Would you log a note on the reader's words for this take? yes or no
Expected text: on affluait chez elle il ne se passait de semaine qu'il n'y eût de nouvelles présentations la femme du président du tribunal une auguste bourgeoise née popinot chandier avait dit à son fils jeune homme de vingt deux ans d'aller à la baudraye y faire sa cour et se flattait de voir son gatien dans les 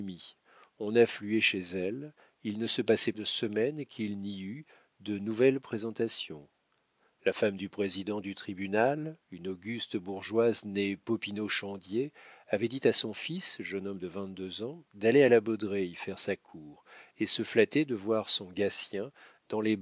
no